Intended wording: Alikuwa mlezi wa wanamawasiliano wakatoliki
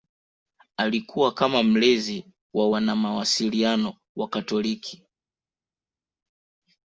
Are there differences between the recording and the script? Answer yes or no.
yes